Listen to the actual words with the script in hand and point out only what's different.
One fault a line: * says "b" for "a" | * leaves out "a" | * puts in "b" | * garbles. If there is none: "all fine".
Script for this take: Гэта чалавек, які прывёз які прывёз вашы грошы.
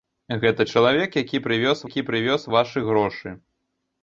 all fine